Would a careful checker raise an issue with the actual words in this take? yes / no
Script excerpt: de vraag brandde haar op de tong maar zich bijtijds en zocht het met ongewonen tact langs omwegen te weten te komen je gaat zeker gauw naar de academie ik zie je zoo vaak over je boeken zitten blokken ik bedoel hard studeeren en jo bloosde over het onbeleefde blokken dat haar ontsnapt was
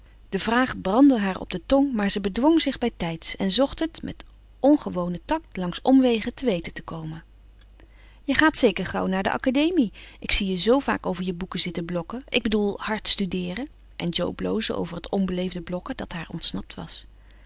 yes